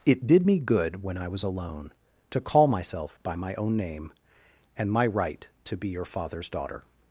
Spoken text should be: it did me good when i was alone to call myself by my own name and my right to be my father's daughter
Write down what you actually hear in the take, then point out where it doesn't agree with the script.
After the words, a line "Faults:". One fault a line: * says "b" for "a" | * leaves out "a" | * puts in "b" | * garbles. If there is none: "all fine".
it did me good when i was alone to call myself by my own name and my right to be your father's daughter
Faults:
* says "your" for "my"